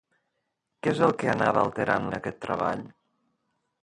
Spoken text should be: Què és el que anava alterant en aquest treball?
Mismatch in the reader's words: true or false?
false